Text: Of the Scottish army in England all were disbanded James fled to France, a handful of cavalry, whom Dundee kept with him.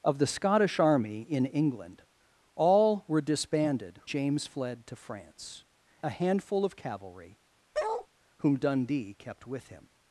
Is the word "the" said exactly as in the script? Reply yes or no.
yes